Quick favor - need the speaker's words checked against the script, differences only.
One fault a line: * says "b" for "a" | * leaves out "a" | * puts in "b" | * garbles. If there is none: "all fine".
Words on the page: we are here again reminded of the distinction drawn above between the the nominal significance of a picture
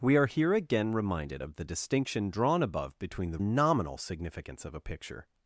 all fine